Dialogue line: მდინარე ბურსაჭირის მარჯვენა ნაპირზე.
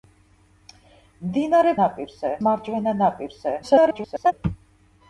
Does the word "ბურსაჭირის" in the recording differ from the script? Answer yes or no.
yes